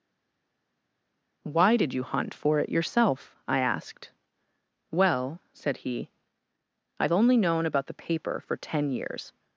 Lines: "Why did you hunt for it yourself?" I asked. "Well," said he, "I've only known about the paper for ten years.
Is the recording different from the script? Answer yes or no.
no